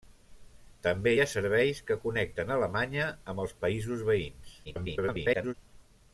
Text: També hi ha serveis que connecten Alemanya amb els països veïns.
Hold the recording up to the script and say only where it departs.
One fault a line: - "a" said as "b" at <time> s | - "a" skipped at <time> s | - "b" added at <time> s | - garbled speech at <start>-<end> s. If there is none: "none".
- garbled speech at 4.6-5.5 s